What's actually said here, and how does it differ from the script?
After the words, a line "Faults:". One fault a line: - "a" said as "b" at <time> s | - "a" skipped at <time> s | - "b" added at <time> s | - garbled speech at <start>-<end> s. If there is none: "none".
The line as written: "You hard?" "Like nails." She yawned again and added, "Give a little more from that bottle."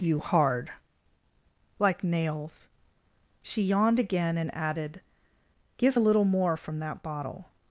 "You hard?" "Like nails." She yawned again and added, "Give a little more from that bottle."
Faults:
none